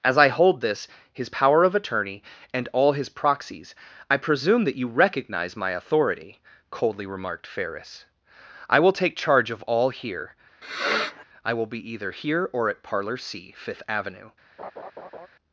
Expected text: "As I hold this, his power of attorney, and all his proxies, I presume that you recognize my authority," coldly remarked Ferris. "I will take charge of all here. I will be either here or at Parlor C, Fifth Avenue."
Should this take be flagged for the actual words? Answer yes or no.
no